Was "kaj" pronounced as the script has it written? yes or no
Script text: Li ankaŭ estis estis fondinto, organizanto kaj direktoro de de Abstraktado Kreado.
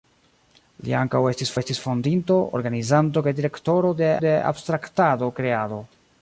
yes